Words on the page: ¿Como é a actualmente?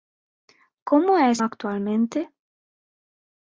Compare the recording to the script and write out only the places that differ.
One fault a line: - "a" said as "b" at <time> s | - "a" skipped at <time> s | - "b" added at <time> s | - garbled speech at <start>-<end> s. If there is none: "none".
none